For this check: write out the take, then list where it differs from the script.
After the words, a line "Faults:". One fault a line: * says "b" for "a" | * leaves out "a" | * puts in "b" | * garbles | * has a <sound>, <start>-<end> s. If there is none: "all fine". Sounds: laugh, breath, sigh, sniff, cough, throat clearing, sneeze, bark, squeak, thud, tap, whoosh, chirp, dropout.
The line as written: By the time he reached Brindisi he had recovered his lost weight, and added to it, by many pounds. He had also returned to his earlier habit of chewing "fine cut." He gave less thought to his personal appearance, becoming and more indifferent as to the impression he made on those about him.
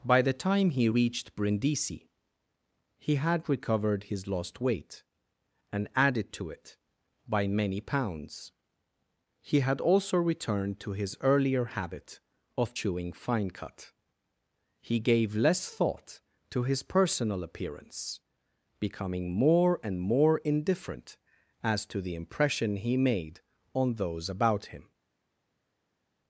By the time he reached Brindisi he had recovered his lost weight, and added to it, by many pounds. He had also returned to his earlier habit of chewing "fine cut." He gave less thought to his personal appearance, becoming more and more indifferent as to the impression he made on those about him.
Faults:
* puts in "more"